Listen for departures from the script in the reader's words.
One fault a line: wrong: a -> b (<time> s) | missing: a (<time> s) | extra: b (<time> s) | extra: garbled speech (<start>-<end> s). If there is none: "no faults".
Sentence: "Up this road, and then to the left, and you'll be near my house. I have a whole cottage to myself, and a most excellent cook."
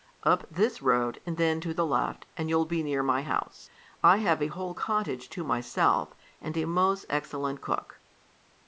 no faults